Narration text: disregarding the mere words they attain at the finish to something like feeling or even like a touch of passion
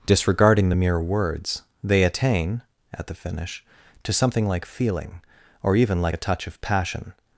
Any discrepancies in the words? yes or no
no